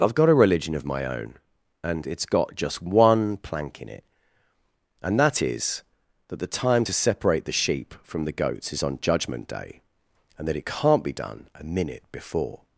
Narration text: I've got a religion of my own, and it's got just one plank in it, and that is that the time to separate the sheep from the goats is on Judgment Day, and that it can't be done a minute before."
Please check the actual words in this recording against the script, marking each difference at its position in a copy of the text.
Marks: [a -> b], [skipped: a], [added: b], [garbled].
I've got a religion of my own, and it's got just one plank in it, and that is that the time to separate the sheep from the goats is on Judgment Day, and that it can't be done a minute before."